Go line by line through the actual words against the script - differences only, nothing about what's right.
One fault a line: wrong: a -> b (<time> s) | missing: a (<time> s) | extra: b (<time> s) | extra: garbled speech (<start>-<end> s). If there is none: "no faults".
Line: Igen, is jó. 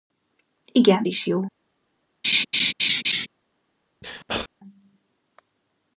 no faults